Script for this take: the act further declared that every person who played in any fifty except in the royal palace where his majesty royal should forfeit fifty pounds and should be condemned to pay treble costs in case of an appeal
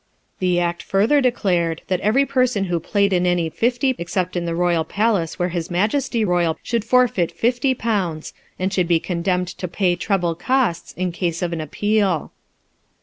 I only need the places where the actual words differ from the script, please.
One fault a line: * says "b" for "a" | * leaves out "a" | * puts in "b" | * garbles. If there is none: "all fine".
all fine